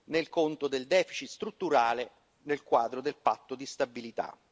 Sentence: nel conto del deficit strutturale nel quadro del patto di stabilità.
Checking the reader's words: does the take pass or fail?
pass